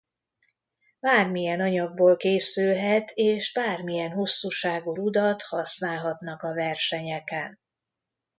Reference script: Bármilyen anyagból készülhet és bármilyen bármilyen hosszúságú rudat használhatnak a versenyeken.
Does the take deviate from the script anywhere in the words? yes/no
yes